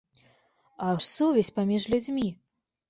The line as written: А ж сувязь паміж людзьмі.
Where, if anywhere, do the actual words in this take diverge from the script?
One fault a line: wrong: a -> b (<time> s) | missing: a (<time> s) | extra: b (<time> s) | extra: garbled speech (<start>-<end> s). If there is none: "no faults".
no faults